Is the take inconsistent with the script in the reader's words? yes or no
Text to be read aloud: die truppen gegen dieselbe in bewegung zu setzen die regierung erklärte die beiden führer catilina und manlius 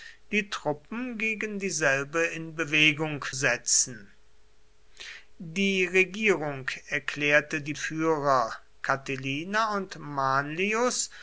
yes